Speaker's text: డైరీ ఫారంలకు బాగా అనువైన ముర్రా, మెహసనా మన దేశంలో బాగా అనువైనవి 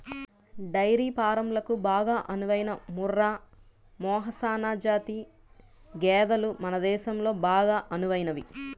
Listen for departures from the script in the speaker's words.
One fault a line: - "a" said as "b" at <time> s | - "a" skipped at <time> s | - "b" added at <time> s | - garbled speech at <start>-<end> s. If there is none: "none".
- "జాతి గేదెలు" added at 4.8 s